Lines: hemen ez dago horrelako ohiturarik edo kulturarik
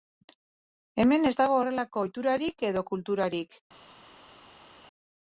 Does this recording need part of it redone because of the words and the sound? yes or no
no